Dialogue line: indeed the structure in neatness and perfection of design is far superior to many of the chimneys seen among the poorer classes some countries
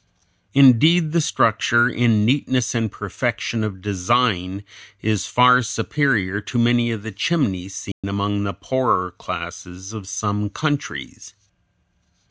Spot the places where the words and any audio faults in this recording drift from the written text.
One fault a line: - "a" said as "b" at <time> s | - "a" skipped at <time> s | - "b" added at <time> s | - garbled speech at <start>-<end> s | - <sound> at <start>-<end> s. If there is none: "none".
- dropout at 7.9-8.0 s
- "of" added at 9.9 s